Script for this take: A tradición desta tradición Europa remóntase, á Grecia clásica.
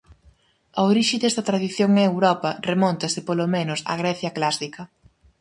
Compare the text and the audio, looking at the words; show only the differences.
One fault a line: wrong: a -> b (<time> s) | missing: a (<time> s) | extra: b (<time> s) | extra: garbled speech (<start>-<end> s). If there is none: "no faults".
wrong: tradición -> orixe (0.9 s)
extra: en (1.9 s)
extra: polo menos (3.3 s)